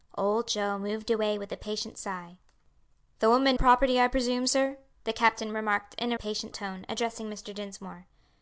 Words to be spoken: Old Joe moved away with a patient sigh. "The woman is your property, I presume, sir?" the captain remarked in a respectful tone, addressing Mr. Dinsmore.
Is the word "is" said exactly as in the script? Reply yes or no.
no